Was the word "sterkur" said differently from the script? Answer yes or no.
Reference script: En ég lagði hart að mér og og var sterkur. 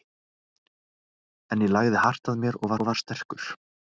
no